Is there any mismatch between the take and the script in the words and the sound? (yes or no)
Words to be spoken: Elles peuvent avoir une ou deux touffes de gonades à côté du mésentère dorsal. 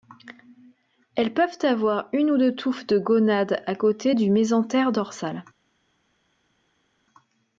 no